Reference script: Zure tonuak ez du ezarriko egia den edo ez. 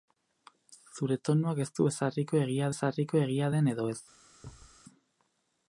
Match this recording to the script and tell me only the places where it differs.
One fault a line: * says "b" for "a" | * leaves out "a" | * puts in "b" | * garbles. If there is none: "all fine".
* puts in "ezarriko egia"